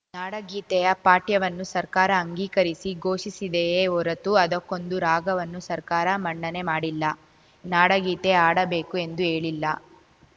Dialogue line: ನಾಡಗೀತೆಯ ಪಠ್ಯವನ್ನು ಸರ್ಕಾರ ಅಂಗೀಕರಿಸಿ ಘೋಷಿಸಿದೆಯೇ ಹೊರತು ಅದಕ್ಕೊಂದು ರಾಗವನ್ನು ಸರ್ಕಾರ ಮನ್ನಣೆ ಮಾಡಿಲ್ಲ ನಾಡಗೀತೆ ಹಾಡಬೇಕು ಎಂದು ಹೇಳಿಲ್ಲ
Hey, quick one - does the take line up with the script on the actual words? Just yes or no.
yes